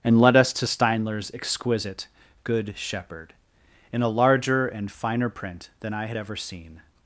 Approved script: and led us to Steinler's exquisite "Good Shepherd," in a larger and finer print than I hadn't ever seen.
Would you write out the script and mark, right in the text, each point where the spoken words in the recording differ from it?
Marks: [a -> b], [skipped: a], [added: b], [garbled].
and led us to Steinler's exquisite "Good Shepherd," in a larger and finer print than I [hadn't -> had] ever seen.